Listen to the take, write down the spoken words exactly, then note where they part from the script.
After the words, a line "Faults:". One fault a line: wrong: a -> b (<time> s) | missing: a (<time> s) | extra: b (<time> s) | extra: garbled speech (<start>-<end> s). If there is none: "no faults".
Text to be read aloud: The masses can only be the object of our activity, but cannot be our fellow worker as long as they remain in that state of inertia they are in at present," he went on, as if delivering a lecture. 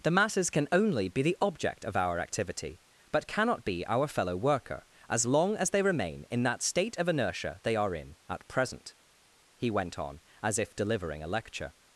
The masses can only be the object of our activity, but cannot be our fellow worker as long as they remain in that state of inertia they are in at present," he went on, as if delivering a lecture.
Faults:
no faults